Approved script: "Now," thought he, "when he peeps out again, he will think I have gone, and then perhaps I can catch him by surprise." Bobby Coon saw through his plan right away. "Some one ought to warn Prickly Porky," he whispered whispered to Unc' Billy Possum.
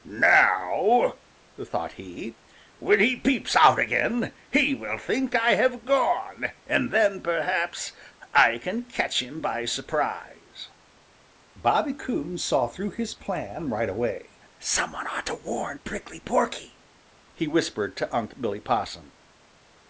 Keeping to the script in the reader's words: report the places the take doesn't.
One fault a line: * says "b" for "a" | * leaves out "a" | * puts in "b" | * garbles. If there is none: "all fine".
* leaves out "whispered"